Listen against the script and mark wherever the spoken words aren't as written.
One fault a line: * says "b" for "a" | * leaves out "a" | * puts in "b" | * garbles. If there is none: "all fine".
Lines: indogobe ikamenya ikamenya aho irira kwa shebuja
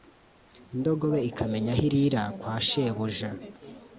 * leaves out "ikamenya"